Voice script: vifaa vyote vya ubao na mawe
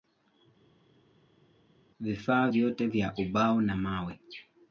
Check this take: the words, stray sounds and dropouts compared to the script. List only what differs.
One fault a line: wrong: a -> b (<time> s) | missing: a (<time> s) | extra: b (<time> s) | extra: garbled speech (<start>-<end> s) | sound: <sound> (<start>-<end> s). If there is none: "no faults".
no faults